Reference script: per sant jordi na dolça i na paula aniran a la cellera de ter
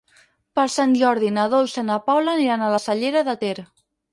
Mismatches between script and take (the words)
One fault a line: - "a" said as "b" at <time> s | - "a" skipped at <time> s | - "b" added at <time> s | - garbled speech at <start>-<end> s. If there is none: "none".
none